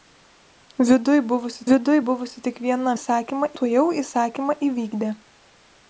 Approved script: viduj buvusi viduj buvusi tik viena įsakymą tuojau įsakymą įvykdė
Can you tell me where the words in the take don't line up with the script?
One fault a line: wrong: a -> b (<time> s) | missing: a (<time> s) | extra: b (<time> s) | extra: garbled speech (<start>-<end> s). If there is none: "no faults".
no faults